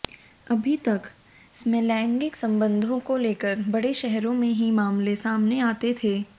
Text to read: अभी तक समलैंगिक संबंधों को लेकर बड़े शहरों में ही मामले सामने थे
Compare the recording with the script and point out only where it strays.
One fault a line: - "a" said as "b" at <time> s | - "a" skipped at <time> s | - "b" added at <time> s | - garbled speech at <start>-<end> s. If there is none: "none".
- "आते" added at 5.6 s